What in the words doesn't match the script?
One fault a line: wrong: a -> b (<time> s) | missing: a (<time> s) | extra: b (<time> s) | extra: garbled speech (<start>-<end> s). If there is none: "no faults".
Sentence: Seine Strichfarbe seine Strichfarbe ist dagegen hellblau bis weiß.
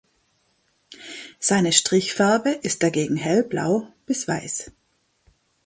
missing: seine Strichfarbe (2.5 s)